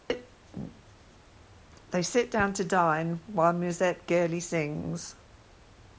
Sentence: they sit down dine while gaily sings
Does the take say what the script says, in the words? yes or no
no